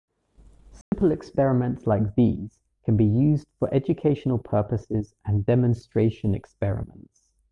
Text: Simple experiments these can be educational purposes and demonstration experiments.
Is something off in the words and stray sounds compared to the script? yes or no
yes